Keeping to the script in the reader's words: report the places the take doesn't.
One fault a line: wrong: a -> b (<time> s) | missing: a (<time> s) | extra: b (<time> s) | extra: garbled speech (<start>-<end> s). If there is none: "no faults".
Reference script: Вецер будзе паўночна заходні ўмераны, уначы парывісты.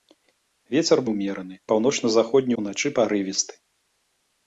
wrong: будзе -> ўмераны (1.1 s)
missing: ўмераны (2.5 s)